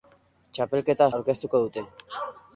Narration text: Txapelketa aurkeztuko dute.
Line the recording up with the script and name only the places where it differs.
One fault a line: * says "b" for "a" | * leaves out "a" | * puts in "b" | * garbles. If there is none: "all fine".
all fine